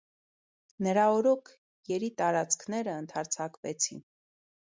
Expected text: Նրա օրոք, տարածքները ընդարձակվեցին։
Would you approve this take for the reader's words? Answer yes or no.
no